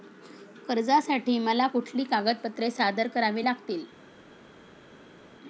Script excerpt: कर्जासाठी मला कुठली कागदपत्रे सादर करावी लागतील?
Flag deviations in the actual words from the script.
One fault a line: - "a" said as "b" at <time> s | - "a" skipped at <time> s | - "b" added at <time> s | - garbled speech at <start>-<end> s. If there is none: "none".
none